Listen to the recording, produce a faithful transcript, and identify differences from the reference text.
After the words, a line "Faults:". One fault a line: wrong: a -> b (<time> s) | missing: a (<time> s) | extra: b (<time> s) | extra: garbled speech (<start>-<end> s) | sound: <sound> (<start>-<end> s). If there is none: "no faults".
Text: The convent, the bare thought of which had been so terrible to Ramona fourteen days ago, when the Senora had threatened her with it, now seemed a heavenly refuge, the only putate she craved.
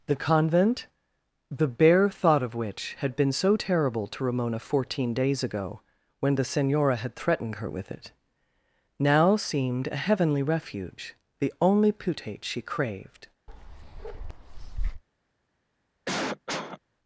The convent, the bare thought of which had been so terrible to Ramona fourteen days ago, when the Senora had threatened her with it, now seemed a heavenly refuge, the only putate she craved.
Faults:
sound: bark (13.5-15.0 s)
sound: cough (16.1-16.8 s)